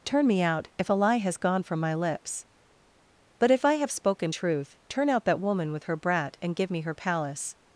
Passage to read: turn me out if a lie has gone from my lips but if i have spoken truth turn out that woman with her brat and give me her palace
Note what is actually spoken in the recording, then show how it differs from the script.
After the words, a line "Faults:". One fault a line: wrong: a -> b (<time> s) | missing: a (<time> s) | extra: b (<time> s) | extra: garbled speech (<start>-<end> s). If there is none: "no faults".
turn me out if a lie has gone from my lips but if i have spoken truth turn out that woman with her brat and give me her palace
Faults:
no faults